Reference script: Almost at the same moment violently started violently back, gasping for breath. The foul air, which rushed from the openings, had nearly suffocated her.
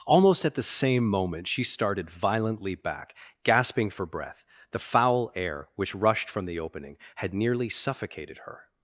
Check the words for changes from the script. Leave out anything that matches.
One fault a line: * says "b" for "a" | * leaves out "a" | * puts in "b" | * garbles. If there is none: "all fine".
* says "she" for "violently"
* says "opening" for "openings"